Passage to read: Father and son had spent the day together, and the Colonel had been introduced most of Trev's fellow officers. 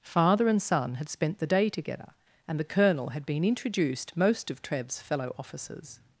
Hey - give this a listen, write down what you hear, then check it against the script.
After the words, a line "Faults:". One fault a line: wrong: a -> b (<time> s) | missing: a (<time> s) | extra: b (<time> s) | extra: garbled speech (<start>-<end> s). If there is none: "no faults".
Father and son had spent the day together, and the Colonel had been introduced most of Trev's fellow officers.
Faults:
no faults